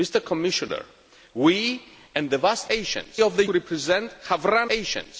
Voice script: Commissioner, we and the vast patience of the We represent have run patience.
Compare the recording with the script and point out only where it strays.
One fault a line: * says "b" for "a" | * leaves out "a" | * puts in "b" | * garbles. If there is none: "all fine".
all fine